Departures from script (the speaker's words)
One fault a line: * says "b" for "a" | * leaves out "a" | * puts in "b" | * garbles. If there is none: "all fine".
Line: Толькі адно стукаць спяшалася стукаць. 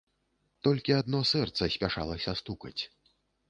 * says "сэрца" for "стукаць"